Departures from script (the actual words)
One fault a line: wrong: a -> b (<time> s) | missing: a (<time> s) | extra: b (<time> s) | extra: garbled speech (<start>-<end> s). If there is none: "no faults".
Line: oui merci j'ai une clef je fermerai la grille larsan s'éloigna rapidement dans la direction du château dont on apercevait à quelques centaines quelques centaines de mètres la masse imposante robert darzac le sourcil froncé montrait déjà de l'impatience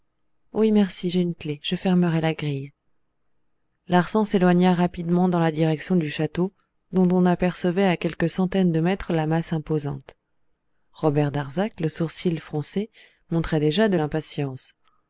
missing: quelques centaines (8.7 s)